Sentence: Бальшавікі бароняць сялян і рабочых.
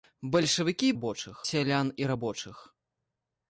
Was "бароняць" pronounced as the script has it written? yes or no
no